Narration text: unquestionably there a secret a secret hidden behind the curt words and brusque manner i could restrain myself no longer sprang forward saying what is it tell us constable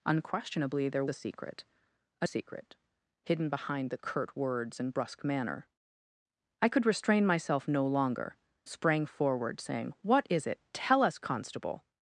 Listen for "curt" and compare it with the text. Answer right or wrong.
right